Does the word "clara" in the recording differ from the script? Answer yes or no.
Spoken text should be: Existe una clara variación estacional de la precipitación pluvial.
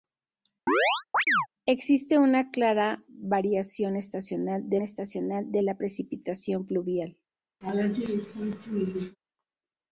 no